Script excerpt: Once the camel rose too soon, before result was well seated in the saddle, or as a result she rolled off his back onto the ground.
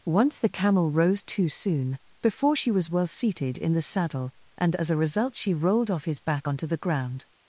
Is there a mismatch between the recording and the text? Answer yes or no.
yes